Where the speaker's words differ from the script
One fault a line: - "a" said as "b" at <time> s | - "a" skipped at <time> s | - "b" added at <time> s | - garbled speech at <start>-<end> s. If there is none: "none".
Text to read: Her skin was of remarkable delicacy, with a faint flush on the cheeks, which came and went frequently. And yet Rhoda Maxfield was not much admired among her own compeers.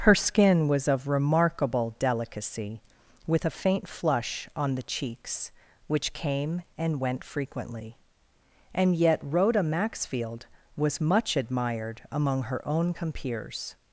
- "not" skipped at 11.0 s